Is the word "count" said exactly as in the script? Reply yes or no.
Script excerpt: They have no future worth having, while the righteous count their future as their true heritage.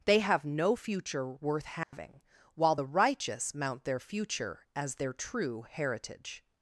no